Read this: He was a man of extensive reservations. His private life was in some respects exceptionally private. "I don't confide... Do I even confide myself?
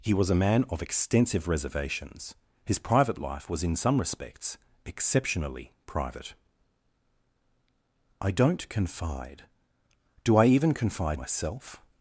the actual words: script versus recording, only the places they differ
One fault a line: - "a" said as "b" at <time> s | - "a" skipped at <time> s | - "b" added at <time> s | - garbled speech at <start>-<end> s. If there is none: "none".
none